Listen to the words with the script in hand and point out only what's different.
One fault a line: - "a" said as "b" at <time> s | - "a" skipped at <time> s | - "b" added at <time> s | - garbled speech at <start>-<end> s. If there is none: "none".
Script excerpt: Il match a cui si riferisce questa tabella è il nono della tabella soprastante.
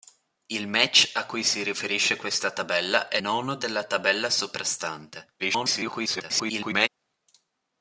- "il" skipped at 3.2 s
- garbled speech at 5.4-6.9 s